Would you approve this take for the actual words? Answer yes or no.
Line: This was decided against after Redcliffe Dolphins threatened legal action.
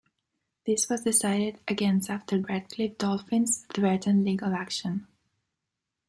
yes